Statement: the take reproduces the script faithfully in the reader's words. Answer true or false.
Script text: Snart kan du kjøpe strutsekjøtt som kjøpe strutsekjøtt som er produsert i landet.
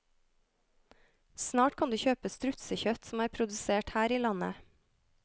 false